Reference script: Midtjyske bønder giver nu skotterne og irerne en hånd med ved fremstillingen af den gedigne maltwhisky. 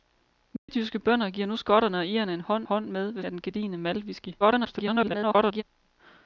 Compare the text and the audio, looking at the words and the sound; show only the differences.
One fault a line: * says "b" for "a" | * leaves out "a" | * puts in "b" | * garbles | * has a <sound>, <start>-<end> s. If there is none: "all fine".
* has a dropout, 0.6-0.7 s
* puts in "hånd"
* leaves out "fremstillingen"
* garbles